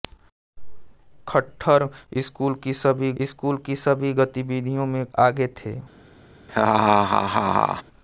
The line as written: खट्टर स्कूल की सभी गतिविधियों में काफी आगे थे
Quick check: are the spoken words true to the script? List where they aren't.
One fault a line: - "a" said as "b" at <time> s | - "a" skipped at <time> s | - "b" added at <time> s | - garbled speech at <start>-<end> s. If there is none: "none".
- "स्कूल की सभी" added at 3.2 s
- "काफी" skipped at 5.0 s